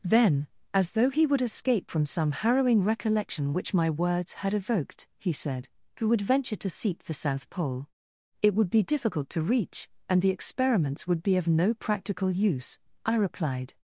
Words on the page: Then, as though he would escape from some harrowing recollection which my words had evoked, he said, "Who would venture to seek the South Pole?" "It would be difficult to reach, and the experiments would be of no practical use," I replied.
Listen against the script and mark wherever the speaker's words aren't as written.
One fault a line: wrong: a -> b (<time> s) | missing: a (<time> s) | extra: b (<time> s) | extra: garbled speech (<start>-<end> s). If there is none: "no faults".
no faults